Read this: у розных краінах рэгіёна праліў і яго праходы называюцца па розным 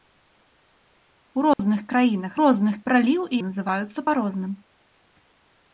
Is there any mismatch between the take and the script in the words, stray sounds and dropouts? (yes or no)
yes